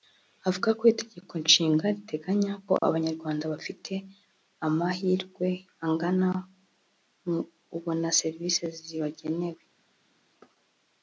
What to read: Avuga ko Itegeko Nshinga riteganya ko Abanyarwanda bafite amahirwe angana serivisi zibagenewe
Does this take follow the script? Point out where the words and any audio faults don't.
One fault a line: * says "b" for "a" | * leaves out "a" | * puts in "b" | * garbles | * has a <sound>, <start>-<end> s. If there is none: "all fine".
* puts in "mu ubona"